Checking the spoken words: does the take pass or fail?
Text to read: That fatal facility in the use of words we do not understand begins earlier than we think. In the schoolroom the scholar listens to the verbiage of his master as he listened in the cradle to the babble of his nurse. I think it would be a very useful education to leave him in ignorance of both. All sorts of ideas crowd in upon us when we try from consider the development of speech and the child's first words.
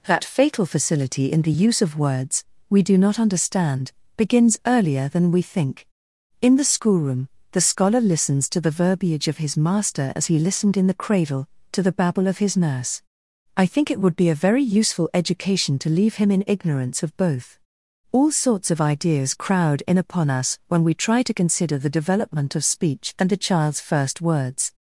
fail